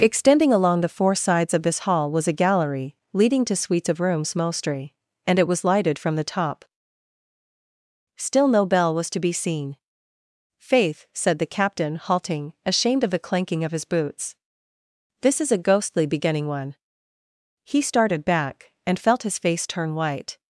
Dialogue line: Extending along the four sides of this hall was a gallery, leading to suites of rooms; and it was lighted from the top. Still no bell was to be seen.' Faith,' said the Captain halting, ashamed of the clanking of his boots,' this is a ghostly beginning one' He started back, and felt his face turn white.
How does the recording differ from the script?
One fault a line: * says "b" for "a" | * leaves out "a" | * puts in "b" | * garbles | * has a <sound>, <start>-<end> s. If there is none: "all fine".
* puts in "mostly"